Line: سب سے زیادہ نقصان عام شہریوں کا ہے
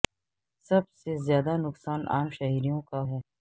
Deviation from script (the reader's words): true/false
false